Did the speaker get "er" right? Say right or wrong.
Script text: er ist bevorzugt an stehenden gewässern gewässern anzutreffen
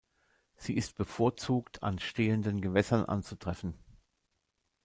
wrong